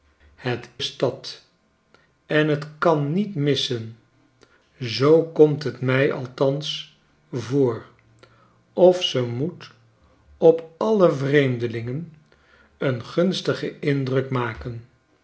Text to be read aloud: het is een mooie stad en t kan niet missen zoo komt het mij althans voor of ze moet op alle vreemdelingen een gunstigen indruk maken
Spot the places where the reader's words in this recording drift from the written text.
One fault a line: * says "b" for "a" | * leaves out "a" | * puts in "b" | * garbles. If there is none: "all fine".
* leaves out "is een mooie"